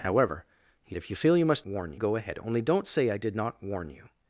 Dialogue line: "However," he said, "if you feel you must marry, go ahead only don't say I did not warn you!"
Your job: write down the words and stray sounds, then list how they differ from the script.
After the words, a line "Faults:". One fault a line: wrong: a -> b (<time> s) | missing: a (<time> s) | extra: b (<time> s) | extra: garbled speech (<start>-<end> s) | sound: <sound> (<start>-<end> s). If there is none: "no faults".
"However," he "if you feel you must warn, go ahead only don't say I did not warn you!"
Faults:
missing: said (0.9 s)
wrong: marry -> warn (1.6 s)